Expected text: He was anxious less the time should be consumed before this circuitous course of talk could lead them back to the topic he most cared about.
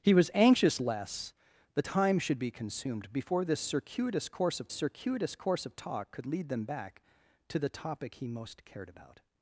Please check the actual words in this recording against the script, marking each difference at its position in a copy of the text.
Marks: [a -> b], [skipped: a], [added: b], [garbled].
He was anxious less the time should be consumed before this circuitous course of [added: circuitous course of] talk could lead them back to the topic he most cared about.